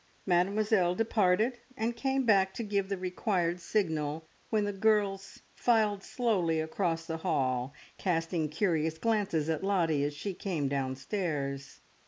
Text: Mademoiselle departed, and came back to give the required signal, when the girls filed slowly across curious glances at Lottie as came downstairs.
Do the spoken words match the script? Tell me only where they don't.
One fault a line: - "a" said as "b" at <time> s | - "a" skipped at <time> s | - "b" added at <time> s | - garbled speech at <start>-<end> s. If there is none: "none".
- "the hall casting" added at 7.0 s
- "she" added at 10.2 s